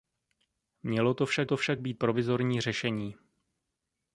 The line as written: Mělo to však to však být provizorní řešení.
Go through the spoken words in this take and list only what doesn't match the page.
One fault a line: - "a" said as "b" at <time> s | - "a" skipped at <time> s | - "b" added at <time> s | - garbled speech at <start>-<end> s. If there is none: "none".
none